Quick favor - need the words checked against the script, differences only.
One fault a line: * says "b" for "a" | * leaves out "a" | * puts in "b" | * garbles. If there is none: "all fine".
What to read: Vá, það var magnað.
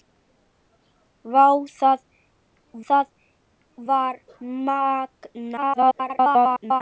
* puts in "það"
* garbles